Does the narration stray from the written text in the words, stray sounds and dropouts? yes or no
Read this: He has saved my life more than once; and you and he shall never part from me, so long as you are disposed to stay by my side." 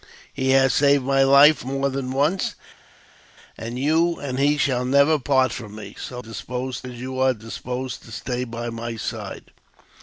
yes